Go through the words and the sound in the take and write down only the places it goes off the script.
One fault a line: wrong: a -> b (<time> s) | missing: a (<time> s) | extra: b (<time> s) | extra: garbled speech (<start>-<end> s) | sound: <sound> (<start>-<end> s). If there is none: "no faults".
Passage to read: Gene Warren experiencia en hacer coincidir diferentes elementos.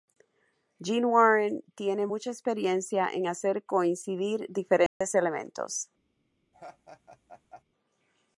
extra: tiene mucha (1.8 s)
sound: dropout (4.9-5.0 s)
sound: laugh (6.5-7.6 s)